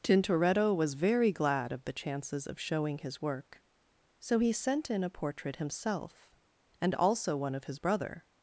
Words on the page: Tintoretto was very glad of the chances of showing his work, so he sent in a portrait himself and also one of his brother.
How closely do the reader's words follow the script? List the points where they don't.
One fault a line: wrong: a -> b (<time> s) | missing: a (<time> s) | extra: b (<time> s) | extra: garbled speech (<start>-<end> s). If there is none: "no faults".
no faults